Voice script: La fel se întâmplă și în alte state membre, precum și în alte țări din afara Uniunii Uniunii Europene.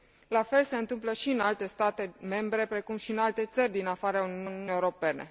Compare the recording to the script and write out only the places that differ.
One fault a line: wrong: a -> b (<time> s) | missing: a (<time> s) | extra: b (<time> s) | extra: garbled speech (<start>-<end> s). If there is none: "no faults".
no faults